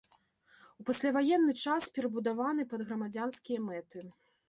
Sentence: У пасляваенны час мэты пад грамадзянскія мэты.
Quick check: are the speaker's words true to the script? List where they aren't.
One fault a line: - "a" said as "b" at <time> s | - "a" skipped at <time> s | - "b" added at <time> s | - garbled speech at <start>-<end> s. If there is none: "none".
- "мэты" said as "перабудаваны" at 2.0 s